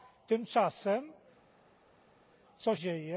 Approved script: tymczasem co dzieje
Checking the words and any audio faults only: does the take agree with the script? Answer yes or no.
yes